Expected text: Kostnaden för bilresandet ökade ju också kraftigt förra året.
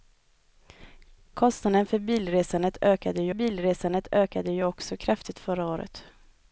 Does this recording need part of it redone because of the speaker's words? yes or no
yes